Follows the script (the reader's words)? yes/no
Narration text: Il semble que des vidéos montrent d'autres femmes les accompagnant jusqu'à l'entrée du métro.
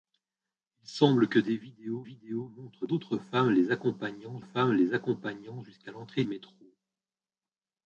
no